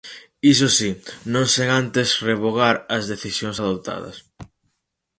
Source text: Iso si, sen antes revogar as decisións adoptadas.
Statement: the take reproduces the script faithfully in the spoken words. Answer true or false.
false